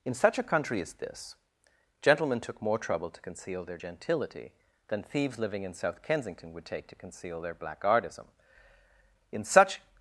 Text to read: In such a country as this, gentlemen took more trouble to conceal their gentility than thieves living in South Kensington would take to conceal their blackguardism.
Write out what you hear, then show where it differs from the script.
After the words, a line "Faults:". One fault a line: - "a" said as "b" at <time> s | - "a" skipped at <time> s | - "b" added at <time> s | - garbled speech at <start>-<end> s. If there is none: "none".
In such a country as this, gentlemen took more trouble to conceal their gentility than thieves living in South Kensington would take to conceal their blackguardism. In such
Faults:
- "In such" added at 9.3 s